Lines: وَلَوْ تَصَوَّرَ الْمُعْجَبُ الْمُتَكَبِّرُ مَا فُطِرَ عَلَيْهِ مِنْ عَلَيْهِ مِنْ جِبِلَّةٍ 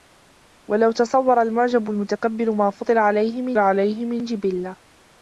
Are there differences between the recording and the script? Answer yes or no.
no